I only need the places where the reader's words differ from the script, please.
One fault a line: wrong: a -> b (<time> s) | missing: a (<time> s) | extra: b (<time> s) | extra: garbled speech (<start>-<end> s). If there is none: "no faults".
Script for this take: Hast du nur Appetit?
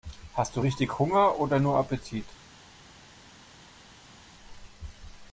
extra: richtig Hunger oder (0.6 s)